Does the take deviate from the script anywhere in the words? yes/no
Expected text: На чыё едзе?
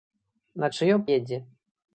no